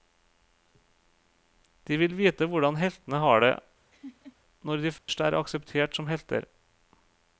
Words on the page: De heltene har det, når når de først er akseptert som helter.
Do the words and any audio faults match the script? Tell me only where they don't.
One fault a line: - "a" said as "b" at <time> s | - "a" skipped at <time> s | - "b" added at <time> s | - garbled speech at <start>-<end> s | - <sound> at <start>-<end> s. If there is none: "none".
- "vil vite hvordan" added at 2.0 s
- laugh at 3.9-4.4 s
- "når" skipped at 4.8 s
- dropout at 5.0-5.1 s